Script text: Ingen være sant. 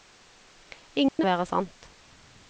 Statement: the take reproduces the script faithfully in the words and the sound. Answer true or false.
false